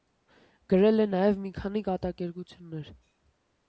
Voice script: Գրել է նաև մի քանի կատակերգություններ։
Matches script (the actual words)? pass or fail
pass